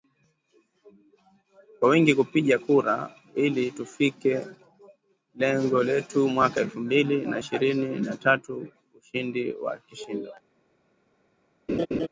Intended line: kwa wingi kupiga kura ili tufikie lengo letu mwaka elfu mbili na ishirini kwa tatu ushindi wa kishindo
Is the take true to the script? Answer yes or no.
no